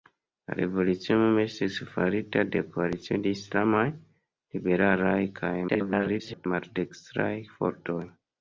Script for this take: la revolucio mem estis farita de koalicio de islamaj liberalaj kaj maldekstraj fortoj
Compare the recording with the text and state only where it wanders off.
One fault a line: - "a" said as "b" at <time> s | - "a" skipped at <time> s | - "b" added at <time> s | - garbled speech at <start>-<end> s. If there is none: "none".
- garbled speech at 5.7-6.5 s